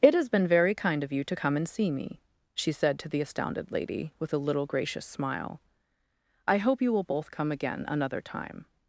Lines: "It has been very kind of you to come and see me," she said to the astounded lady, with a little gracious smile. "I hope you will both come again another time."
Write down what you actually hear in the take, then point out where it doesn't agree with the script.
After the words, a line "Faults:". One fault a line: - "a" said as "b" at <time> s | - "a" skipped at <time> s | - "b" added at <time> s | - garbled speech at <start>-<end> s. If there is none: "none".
"It has been very kind of you to come and see me," she said to the astounded lady, with a little gracious smile. "I hope you will both come again another time."
Faults:
none